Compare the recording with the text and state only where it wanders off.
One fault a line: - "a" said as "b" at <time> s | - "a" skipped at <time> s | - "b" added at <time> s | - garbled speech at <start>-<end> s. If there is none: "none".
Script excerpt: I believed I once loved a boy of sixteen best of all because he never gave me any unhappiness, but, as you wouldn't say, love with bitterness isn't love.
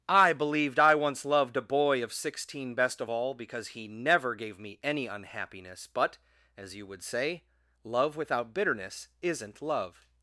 - "wouldn't" said as "would" at 6.9 s
- "with" said as "without" at 8.2 s